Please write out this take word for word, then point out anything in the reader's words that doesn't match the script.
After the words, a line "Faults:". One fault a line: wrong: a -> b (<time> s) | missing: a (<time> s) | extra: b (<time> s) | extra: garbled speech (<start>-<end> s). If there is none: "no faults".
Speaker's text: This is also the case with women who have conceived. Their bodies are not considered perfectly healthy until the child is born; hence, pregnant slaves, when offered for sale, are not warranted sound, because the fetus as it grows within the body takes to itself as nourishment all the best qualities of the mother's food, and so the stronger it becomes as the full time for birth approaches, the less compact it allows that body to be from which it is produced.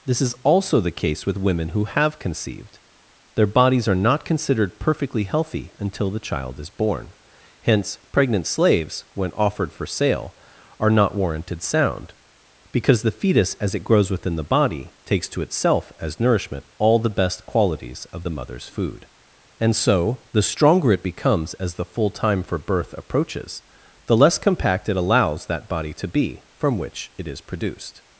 This is also the case with women who have conceived. Their bodies are not considered perfectly healthy until the child is born; hence, pregnant slaves, when offered for sale, are not warranted sound, because the fetus as it grows within the body takes to itself as nourishment all the best qualities of the mother's food, and so the stronger it becomes as the full time for birth approaches, the less compact it allows that body to be from which it is produced.
Faults:
no faults